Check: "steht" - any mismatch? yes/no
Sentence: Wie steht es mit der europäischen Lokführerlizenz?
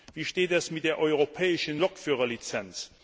no